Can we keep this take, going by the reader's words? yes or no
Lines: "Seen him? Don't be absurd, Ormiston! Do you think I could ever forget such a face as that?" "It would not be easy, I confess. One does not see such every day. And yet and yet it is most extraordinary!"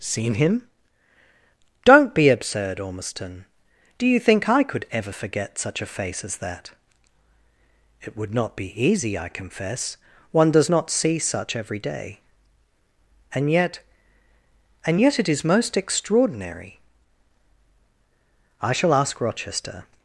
no